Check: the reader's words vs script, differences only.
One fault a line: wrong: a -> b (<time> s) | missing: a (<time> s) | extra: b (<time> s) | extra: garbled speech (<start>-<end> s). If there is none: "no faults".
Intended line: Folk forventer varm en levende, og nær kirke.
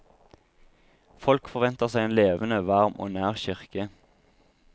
wrong: varm -> seg (1.9 s)
extra: varm (2.7 s)